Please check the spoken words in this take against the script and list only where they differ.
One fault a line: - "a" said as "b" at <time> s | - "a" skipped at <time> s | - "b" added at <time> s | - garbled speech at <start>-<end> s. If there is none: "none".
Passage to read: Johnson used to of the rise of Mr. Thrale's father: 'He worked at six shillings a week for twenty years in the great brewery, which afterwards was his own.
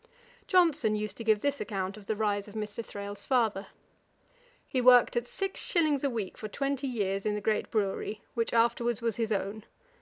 - "give this account" added at 1.2 s